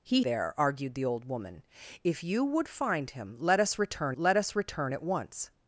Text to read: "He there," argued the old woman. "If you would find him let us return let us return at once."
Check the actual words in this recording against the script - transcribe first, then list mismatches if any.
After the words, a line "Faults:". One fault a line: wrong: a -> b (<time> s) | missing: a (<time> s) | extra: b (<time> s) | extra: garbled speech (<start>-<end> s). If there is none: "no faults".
"He there," argued the old woman. "If you would find him let us return let us return at once."
Faults:
no faults